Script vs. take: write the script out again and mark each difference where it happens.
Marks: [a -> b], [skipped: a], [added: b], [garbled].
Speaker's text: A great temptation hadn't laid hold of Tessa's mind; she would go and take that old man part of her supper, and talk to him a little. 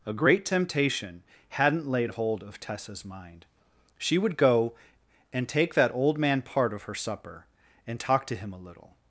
A great temptation hadn't laid hold of Tessa's mind; she would go and take that old man part of her supper, and talk to him a little.